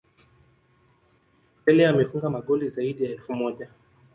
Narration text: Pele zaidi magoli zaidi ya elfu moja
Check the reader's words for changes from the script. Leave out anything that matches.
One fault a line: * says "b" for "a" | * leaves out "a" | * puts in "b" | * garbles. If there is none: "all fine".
* says "amefunga" for "zaidi"